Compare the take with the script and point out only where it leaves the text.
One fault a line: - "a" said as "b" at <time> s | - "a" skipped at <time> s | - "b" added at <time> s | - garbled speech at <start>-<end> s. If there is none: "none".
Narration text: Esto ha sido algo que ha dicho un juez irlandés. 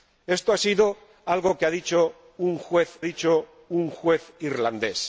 - "dicho un juez" added at 3.0 s